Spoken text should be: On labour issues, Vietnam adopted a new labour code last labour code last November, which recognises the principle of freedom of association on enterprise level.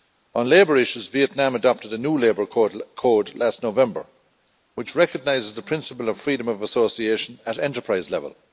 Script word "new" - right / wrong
right